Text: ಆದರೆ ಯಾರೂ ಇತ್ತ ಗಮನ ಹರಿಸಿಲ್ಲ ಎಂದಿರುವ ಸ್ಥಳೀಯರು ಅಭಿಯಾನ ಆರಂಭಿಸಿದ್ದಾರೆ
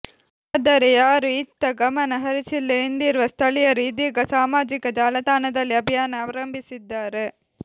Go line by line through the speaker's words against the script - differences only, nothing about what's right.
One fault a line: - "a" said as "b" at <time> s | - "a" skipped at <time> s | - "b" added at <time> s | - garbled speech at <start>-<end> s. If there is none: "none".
- "ಇದೀಗ ಸಾಮಾಜಿಕ ಜಾಲತಾಣದಲ್ಲಿ" added at 3.9 s